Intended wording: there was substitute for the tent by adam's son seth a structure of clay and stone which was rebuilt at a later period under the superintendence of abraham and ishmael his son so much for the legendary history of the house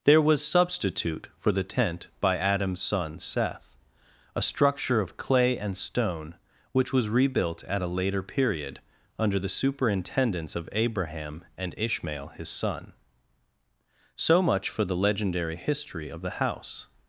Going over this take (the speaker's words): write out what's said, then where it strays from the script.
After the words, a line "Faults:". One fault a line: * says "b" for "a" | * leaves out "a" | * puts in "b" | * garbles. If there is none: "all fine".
there was substitute for the tent by adam's son seth a structure of clay and stone which was rebuilt at a later period under the superintendence of abraham and ishmael his son so much for the legendary history of the house
Faults:
all fine